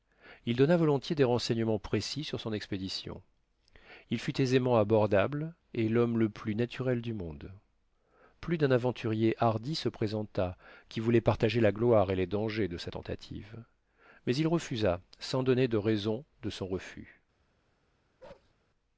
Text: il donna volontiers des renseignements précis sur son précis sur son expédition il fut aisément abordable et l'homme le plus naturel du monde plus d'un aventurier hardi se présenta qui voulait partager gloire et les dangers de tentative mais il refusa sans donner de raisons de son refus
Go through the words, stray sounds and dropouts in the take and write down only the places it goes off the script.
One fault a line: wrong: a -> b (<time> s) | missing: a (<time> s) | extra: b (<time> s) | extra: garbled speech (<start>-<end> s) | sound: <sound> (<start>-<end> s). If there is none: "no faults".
missing: précis sur son (2.5 s)
extra: la (11.6 s)
extra: sa (12.8 s)
sound: bark (18.2-18.5 s)